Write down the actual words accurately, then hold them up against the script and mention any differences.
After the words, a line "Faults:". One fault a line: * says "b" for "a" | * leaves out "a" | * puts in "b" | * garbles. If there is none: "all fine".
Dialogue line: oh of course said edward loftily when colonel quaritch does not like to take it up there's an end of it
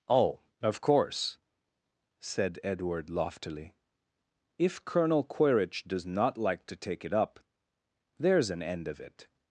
oh of course said edward loftily if colonel quaritch does not like to take it up there's an end of it
Faults:
* says "if" for "when"